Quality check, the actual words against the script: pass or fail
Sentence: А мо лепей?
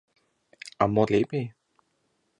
pass